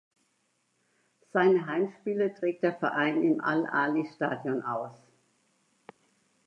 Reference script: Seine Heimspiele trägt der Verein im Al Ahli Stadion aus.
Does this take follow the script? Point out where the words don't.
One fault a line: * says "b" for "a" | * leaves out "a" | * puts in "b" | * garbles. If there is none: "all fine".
all fine